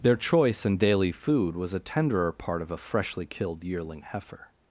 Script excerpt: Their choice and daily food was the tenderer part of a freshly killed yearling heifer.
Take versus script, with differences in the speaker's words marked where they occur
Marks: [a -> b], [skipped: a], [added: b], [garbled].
Their choice and daily food was [the -> a] tenderer part of a freshly killed yearling heifer.